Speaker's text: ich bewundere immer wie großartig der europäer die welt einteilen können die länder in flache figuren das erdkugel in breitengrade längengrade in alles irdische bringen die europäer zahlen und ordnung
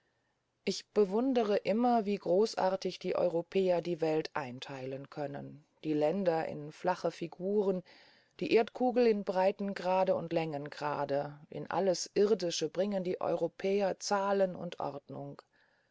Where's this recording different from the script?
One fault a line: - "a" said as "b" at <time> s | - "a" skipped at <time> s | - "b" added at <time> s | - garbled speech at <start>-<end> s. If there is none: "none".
- "der" said as "die" at 3.0 s
- "das" said as "die" at 8.4 s
- "und" added at 10.2 s